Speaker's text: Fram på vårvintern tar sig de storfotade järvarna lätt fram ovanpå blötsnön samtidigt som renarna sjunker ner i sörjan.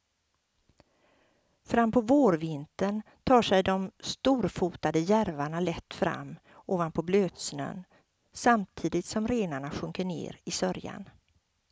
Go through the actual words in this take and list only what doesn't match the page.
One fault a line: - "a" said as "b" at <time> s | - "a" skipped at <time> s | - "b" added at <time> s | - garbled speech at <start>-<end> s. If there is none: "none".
none